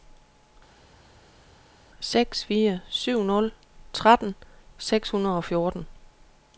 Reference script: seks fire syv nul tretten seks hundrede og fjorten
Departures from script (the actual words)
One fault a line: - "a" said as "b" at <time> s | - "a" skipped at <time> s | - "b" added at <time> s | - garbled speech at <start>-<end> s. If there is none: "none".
none